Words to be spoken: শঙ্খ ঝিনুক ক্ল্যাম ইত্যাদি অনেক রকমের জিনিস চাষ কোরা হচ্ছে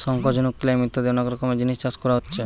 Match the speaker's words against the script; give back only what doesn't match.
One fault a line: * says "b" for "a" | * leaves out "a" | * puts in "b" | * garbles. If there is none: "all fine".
all fine